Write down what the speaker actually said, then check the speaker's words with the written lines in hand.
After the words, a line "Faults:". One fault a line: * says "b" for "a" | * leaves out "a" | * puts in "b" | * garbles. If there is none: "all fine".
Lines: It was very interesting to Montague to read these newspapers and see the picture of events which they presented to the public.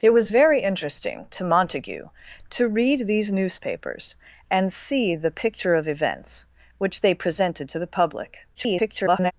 It was very interesting to Montague to read these newspapers and see the picture of events which they presented to the public. [garbled]
Faults:
* garbles